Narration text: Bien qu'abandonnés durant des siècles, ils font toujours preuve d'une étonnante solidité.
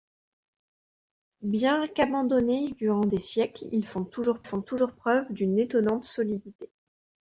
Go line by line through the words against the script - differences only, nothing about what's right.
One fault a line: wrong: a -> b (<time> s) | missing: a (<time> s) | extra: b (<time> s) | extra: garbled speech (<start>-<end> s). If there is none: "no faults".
extra: font toujours (4.4 s)